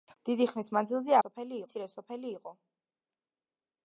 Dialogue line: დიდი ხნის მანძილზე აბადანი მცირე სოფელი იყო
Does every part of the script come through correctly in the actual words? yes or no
no